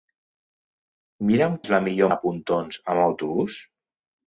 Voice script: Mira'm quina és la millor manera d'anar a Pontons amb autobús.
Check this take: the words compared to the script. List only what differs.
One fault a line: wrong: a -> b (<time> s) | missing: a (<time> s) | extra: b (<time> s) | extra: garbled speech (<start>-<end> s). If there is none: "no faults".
missing: quina (1.6 s)
missing: manera d'anar (2.1 s)